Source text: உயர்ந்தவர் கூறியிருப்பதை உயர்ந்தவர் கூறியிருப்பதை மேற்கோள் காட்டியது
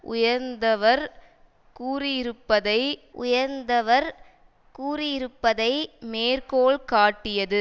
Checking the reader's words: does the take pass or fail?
pass